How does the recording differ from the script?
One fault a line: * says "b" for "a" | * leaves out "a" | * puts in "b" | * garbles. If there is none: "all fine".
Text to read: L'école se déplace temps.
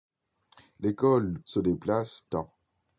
all fine